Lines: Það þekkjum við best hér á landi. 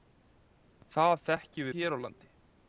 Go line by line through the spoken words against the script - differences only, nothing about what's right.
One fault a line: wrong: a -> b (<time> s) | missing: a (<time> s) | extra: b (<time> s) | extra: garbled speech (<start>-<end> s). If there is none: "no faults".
missing: við best (1.7 s)